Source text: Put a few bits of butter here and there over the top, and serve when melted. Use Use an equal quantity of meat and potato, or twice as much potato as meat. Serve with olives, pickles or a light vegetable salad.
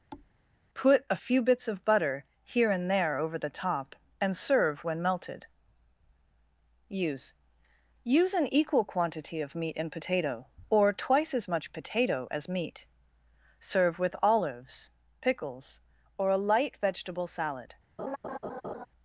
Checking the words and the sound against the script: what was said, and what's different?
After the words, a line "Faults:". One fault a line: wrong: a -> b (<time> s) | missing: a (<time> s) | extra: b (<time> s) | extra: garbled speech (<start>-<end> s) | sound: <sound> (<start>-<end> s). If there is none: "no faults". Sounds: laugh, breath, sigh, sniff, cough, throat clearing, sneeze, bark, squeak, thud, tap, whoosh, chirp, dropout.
Put a few bits of butter here and there over the top, and serve when melted. Use Use an equal quantity of meat and potato, or twice as much potato as meat. Serve with olives, pickles or a light vegetable salad.
Faults:
sound: thud (0.1-0.3 s)
sound: laugh (18.0-18.9 s)